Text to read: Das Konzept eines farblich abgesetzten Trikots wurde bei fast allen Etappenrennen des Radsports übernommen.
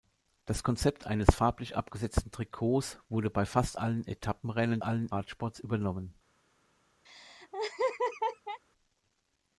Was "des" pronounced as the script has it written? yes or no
no